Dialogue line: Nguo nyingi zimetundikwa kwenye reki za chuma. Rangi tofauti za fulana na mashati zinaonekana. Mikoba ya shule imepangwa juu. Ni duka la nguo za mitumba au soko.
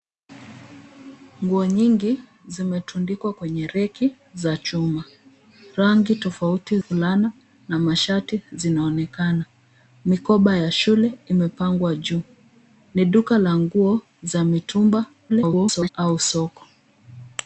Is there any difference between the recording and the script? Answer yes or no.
yes